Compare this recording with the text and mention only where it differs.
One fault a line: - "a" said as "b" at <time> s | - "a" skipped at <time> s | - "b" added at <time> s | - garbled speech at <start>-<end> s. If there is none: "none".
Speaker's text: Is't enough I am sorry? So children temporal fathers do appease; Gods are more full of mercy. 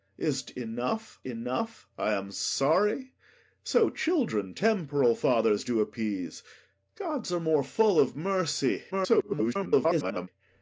- "enough" added at 1.3 s
- garbled speech at 8.9-10.3 s